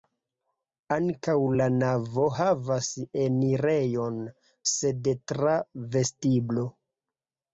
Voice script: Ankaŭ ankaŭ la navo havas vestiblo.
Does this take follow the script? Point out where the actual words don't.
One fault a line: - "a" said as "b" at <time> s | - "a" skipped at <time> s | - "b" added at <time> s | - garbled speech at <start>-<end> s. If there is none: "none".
- "ankaŭ" skipped at 1.3 s
- "enirejon sed tra" added at 3.2 s